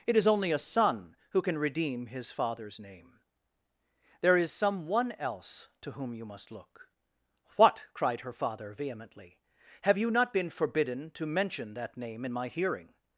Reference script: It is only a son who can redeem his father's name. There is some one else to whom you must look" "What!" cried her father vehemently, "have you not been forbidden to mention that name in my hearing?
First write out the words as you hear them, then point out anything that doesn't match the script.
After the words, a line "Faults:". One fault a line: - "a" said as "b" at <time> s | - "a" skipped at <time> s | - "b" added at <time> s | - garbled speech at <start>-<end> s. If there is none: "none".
It is only a son who can redeem his father's name. There is some one else to whom you must look" "What!" cried her father vehemently, "have you not been forbidden to mention that name in my hearing?
Faults:
none